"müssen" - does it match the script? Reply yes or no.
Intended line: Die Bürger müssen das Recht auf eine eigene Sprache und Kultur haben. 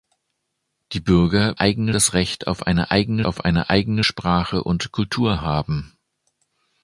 no